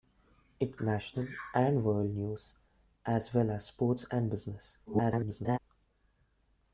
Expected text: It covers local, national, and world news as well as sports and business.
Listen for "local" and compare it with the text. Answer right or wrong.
wrong